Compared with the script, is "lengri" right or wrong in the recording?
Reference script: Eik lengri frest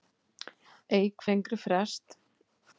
right